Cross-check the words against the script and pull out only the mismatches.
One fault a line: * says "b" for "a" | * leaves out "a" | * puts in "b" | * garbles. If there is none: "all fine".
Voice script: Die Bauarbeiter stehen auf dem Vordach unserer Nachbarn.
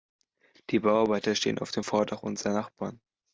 all fine